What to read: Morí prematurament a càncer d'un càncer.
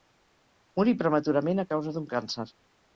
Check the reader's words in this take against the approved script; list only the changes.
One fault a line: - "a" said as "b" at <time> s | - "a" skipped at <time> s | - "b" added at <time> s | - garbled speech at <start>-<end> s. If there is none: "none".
- "càncer" said as "causa" at 1.8 s